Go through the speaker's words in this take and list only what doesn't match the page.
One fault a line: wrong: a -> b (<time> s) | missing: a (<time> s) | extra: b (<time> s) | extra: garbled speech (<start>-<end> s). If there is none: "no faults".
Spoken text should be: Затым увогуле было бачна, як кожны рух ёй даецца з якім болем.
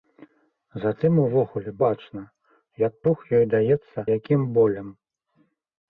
missing: было (1.7 s)
missing: кожны (2.9 s)
missing: з (4.0 s)